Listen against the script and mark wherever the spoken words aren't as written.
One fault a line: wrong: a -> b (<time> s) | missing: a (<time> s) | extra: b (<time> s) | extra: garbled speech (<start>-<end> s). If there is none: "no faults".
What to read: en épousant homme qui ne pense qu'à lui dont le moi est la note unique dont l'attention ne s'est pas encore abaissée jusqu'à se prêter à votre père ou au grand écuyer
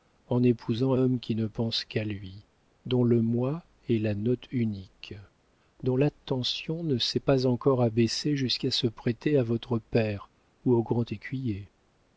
no faults